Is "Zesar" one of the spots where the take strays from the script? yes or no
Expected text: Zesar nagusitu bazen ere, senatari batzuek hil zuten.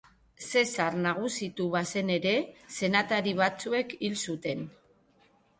no